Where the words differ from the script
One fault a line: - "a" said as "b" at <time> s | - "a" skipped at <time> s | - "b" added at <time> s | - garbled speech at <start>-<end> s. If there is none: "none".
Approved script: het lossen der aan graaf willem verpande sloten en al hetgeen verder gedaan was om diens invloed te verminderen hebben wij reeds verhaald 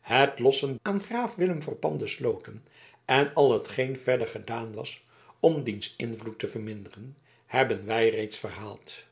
- "der" skipped at 0.8 s